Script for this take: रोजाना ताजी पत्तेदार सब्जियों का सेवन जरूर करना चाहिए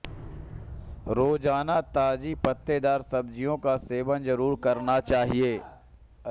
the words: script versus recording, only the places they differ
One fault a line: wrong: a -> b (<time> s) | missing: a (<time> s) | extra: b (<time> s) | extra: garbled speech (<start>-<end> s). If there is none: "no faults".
no faults